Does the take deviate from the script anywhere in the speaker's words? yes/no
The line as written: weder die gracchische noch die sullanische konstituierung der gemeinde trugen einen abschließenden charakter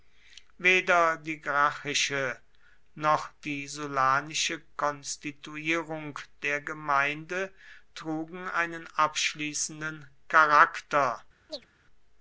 no